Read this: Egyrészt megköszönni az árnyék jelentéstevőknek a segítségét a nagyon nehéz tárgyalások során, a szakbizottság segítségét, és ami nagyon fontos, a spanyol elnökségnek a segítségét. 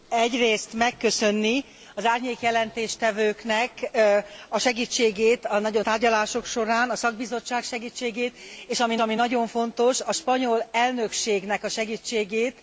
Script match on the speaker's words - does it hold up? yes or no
no